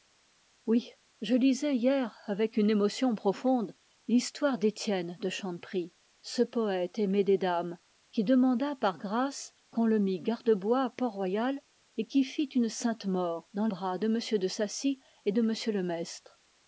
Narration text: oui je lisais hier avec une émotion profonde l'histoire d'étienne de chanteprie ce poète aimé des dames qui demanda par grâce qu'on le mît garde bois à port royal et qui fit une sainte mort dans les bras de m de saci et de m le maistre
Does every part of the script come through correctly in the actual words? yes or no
no